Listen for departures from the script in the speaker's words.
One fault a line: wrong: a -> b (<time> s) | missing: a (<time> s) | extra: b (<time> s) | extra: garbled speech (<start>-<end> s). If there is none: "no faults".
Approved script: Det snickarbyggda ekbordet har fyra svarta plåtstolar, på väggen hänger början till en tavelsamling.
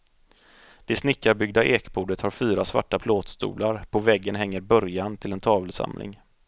no faults